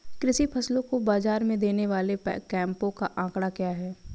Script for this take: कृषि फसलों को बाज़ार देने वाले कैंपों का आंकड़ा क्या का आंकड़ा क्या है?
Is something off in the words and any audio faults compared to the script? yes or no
yes